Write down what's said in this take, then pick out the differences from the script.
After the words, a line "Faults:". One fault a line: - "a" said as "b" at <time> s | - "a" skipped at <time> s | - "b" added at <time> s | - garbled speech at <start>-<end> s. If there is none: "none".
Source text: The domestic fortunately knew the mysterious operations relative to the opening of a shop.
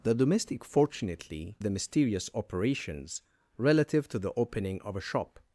The domestic fortunately the mysterious operations relative to the opening of a shop.
Faults:
- "knew" skipped at 1.6 s